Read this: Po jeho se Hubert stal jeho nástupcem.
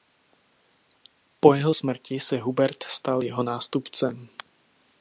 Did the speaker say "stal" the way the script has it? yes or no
yes